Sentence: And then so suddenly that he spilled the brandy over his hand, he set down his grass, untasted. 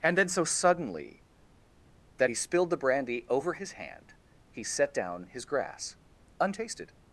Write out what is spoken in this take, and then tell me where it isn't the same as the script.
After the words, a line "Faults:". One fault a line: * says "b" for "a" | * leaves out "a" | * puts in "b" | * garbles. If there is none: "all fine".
And then so suddenly that he spilled the brandy over his hand, he set down his grass, untasted.
Faults:
all fine